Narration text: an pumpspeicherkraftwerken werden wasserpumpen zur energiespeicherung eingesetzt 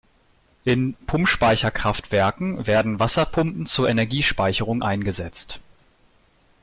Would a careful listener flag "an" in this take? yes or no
yes